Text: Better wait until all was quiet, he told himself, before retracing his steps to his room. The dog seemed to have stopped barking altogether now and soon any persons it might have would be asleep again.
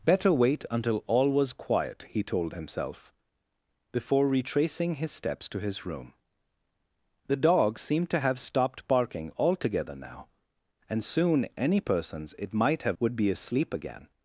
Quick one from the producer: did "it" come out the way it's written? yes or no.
yes